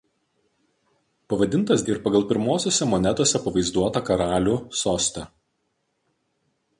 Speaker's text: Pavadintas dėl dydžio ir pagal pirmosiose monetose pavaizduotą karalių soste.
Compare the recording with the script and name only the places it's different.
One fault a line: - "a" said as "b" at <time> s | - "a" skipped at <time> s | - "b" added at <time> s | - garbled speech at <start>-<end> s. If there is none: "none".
- "dėl dydžio" skipped at 1.8 s